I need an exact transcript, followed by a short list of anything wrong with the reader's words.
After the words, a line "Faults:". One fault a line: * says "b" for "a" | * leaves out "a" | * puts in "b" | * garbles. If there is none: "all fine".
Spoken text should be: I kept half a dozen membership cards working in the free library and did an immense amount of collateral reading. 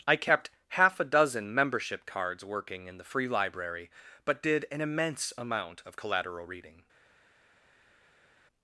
I kept half a dozen membership cards working in the free library but did an immense amount of collateral reading.
Faults:
* says "but" for "and"